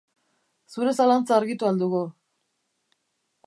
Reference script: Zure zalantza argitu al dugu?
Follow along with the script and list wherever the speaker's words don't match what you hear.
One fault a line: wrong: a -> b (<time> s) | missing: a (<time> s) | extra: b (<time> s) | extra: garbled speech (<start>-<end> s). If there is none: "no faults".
no faults